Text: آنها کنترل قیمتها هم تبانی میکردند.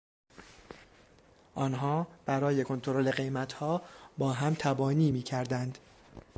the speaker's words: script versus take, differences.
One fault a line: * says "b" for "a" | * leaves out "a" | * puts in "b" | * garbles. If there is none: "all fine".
* puts in "برای"
* puts in "با"